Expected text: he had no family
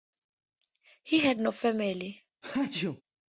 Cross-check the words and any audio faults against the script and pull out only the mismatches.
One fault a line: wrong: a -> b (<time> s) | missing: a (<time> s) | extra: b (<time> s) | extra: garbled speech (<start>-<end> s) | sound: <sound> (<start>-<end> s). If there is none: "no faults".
sound: sneeze (2.4-3.0 s)